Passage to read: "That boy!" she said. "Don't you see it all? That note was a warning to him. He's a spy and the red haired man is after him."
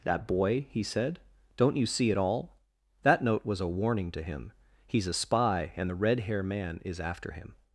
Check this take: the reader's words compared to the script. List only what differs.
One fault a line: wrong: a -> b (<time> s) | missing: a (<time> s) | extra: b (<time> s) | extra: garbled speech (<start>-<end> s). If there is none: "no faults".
wrong: she -> he (0.7 s)
wrong: haired -> hair (6.2 s)